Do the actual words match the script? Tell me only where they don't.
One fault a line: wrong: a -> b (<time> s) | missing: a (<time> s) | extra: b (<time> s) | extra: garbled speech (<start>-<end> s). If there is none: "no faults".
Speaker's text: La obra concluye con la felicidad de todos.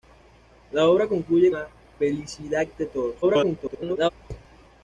missing: con (1.5 s)
extra: garbled speech (3.2-4.1 s)